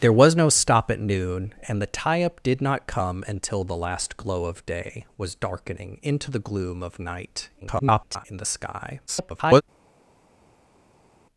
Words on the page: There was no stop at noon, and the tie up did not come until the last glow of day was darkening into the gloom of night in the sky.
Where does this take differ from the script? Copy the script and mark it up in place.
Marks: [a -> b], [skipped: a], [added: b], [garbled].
There was no stop at noon, and the tie up did not come until the last glow of day was darkening into the gloom of night [garbled] in the sky. [garbled]